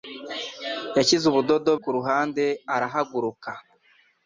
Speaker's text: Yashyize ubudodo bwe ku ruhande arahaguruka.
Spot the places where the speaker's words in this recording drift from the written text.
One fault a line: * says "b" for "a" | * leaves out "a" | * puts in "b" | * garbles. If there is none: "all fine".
* leaves out "bwe"